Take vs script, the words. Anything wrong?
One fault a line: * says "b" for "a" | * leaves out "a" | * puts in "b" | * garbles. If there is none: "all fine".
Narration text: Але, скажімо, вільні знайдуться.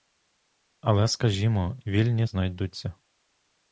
all fine